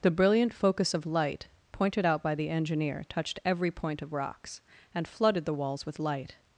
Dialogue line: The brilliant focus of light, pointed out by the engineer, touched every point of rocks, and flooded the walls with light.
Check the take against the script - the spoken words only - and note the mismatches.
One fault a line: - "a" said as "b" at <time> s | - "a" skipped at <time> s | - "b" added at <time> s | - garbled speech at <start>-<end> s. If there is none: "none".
none